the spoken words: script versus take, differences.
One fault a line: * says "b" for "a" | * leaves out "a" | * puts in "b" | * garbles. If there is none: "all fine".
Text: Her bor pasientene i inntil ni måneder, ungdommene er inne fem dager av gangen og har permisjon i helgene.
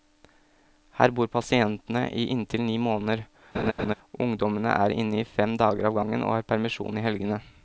all fine